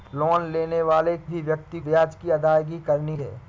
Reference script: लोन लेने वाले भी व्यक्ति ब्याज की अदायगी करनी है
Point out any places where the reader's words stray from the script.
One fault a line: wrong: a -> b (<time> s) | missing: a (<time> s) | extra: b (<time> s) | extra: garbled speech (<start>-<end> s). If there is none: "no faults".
no faults